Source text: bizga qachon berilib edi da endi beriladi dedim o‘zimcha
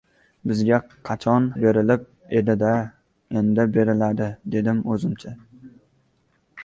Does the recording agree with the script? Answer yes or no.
yes